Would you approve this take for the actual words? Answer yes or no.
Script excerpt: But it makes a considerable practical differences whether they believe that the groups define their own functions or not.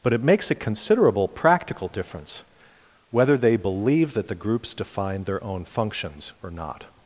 no